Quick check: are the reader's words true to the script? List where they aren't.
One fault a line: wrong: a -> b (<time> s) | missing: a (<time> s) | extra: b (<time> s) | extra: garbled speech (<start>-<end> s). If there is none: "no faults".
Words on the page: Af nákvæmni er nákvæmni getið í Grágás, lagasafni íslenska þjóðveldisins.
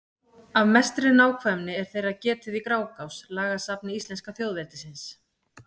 extra: mestri (0.8 s)
wrong: nákvæmni -> þeirra (1.9 s)